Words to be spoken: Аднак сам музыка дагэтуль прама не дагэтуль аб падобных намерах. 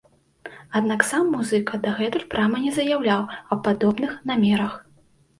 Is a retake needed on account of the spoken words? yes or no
yes